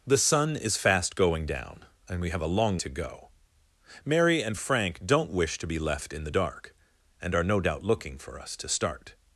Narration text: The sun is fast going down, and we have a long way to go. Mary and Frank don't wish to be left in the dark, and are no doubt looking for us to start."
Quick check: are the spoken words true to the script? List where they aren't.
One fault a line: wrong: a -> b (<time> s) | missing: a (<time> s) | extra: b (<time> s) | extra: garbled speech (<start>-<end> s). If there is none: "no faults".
missing: way (2.8 s)